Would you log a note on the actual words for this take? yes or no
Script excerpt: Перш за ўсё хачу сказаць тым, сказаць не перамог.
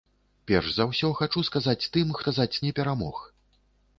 no